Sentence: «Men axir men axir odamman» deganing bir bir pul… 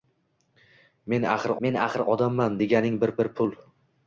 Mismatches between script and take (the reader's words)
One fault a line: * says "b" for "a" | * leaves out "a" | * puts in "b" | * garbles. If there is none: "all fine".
all fine